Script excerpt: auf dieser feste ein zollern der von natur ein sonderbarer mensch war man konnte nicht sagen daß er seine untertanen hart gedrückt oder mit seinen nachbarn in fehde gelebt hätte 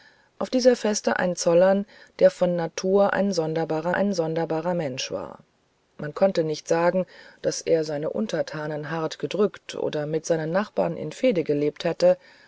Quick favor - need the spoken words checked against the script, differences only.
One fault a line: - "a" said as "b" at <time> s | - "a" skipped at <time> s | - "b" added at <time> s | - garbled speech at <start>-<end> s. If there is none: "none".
- "ein sonderbarer" added at 3.9 s